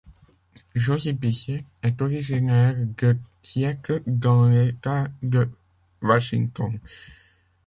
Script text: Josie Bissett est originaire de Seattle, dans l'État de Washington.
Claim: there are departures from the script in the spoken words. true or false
false